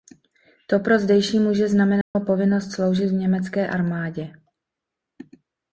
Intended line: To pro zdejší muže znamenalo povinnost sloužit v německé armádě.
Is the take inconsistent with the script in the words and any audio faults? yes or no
yes